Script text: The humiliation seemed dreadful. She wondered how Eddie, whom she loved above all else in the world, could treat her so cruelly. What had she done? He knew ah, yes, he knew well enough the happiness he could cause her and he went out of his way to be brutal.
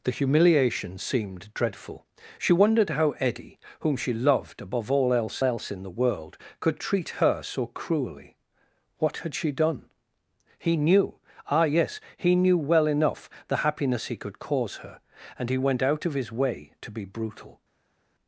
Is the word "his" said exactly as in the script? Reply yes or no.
yes